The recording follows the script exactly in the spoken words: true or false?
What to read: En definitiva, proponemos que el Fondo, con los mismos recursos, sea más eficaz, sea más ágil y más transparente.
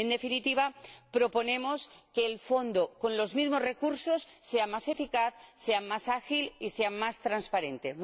false